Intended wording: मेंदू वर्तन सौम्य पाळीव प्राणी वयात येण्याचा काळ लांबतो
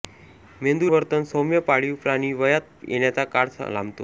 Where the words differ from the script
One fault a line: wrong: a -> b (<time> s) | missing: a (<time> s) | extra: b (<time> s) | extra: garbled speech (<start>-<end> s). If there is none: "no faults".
no faults